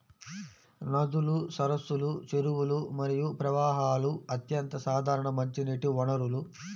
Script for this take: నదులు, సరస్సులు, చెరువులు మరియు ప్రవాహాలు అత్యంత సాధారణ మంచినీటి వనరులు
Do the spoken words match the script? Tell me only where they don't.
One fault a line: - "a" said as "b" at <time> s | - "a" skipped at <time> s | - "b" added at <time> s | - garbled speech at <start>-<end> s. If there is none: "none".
none